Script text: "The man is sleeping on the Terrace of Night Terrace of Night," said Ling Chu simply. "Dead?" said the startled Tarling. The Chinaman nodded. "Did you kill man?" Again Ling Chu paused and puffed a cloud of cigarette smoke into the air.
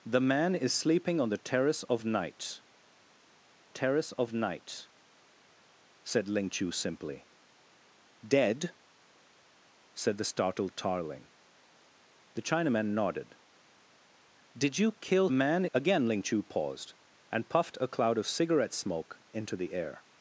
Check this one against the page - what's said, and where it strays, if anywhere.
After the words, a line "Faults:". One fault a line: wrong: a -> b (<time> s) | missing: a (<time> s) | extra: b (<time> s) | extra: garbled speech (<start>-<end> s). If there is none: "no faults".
"The man is sleeping on the Terrace of Night Terrace of Night," said Ling Chu simply. "Dead?" said the startled Tarling. The Chinaman nodded. "Did you kill man?" Again Ling Chu paused and puffed a cloud of cigarette smoke into the air.
Faults:
no faults